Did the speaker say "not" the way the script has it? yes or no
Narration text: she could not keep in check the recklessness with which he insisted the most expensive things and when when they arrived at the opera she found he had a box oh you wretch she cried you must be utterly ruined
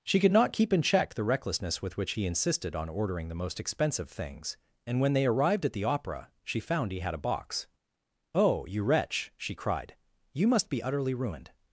yes